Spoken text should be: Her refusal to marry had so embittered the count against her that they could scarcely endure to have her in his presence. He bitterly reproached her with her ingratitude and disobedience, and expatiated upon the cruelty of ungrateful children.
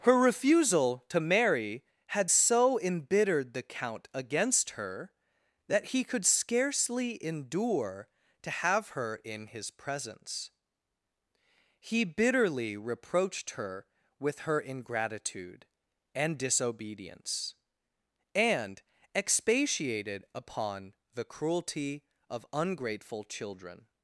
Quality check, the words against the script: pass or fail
fail